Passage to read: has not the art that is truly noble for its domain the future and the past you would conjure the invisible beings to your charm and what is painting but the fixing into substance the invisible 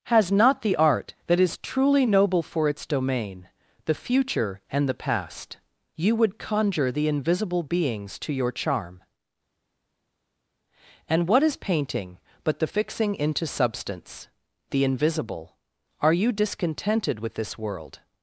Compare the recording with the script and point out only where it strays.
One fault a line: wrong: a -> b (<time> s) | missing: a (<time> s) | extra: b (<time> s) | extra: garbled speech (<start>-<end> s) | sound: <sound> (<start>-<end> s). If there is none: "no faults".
extra: are you discontented with this world (16.0 s)